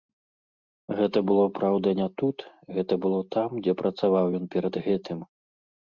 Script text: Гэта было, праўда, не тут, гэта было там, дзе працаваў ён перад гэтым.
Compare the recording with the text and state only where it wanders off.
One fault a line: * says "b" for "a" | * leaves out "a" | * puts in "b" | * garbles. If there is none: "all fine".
all fine